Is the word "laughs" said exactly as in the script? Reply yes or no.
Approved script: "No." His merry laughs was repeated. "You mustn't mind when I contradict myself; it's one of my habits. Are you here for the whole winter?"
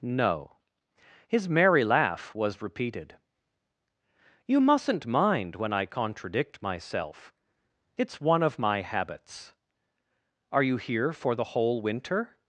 no